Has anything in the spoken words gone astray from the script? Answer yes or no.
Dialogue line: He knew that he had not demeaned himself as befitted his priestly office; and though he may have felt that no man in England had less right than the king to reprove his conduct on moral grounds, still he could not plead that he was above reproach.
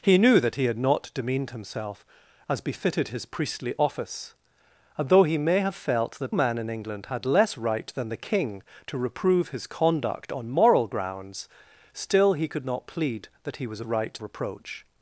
yes